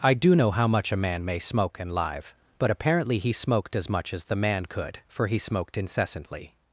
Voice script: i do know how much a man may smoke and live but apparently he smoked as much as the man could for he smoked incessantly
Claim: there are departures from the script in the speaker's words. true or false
false